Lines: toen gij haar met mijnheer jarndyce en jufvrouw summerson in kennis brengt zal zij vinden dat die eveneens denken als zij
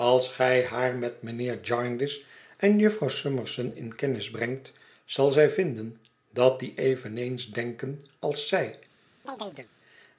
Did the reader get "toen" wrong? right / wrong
wrong